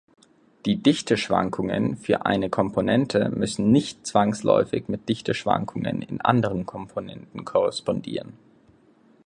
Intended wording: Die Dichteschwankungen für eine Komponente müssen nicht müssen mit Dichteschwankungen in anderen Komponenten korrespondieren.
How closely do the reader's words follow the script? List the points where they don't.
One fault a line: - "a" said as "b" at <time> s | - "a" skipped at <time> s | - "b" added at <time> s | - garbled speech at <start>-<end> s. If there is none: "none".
- "müssen" said as "zwangsläufig" at 4.1 s